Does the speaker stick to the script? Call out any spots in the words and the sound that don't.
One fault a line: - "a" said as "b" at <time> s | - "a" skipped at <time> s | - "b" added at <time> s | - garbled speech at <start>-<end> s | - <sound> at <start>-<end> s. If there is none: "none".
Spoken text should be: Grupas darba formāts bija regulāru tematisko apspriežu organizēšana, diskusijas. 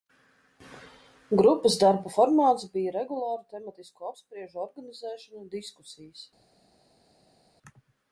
none